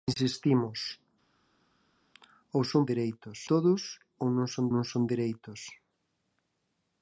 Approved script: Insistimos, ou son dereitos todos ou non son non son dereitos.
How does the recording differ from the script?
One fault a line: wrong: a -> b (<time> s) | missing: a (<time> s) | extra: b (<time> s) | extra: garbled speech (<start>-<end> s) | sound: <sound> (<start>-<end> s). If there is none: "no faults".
no faults